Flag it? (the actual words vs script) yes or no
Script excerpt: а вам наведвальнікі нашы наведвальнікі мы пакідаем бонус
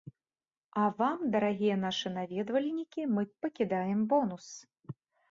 yes